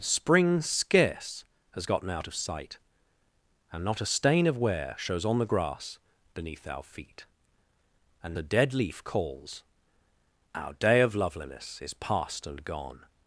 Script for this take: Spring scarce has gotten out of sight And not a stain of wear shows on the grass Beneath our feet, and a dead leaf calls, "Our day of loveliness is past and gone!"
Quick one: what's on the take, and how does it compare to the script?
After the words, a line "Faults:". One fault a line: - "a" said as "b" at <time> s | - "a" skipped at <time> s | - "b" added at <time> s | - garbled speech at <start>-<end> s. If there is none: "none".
Spring scarce has gotten out of sight And not a stain of wear shows on the grass Beneath our feet, and a dead leaf calls, "Our day of loveliness is past and gone!"
Faults:
none